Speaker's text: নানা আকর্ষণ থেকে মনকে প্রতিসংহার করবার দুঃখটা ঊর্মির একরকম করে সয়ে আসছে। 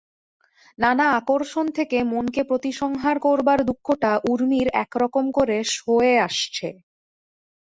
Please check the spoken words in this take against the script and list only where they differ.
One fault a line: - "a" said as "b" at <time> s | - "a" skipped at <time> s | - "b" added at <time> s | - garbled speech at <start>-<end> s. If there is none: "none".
none